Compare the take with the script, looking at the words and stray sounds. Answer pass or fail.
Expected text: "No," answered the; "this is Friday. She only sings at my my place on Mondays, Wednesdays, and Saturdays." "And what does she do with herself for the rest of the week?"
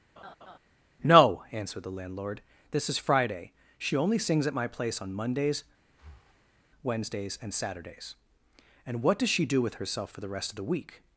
fail